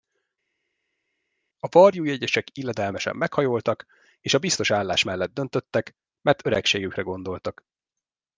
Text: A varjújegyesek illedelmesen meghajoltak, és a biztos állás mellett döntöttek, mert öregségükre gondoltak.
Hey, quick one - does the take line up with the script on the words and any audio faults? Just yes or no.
yes